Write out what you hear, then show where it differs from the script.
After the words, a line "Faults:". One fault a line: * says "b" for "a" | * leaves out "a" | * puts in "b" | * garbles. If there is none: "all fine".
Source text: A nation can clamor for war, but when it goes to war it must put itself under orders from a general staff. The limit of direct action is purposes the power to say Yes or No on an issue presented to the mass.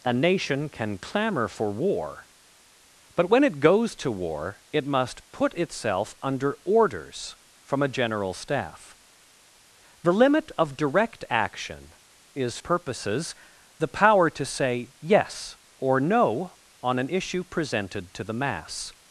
A nation can clamor for war, but when it goes to war it must put itself under orders from a general staff. The limit of direct action is purposes the power to say Yes or No on an issue presented to the mass.
Faults:
all fine